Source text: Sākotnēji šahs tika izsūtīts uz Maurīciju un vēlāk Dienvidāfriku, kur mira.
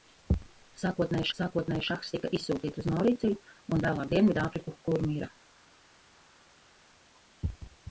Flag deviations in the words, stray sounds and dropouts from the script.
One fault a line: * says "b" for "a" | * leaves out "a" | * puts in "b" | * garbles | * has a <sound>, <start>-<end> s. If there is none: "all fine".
* puts in "sākotnēji"